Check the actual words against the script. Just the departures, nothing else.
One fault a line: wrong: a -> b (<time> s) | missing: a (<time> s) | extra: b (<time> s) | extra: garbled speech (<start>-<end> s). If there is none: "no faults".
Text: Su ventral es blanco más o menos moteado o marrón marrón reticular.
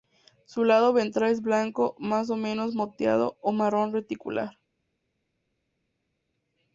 extra: lado (0.6 s)
missing: marrón (3.9 s)